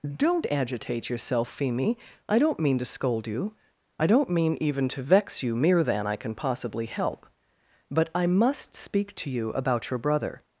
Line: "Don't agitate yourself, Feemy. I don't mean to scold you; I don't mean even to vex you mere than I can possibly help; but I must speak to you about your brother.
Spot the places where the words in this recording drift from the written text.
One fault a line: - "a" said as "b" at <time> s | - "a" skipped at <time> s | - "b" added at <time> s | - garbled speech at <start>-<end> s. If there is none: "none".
none